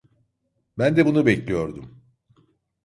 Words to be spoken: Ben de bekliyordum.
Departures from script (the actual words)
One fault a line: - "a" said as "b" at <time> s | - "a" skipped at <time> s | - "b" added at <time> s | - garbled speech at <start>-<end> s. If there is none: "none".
- "bunu" added at 1.1 s